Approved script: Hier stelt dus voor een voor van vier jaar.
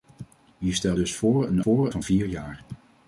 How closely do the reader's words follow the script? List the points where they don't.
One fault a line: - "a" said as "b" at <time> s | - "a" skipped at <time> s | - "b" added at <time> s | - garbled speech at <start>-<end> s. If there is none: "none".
none